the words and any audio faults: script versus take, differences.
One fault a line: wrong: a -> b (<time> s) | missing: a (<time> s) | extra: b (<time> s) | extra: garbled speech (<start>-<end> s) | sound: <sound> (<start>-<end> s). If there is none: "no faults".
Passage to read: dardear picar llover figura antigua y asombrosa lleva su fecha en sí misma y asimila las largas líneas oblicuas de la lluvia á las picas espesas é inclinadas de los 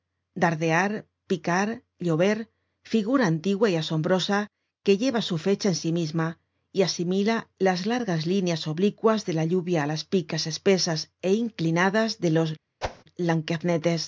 extra: que (4.8 s)
sound: whoosh (12.8-13.0 s)